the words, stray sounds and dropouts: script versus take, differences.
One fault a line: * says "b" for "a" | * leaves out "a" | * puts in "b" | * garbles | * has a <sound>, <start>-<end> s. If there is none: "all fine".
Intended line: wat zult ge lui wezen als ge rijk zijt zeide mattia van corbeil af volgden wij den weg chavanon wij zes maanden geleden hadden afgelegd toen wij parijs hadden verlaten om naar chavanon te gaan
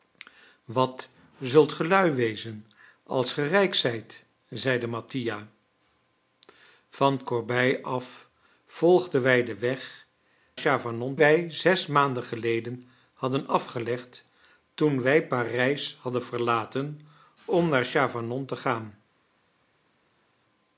all fine